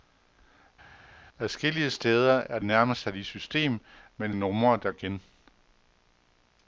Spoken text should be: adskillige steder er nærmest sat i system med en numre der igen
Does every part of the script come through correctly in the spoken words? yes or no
yes